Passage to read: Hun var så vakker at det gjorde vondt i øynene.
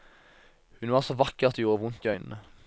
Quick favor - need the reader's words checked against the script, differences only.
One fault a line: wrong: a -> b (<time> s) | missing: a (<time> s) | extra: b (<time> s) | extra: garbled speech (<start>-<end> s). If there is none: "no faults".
no faults